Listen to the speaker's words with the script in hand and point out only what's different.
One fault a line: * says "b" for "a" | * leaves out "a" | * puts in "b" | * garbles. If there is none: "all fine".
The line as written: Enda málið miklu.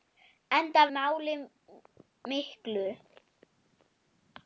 all fine